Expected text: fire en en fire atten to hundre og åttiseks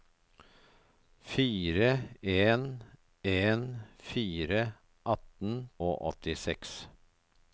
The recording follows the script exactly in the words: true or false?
false